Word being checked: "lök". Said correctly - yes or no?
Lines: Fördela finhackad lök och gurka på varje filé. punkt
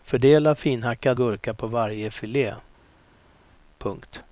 no